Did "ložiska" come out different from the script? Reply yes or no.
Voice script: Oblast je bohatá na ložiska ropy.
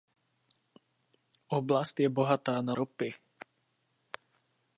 yes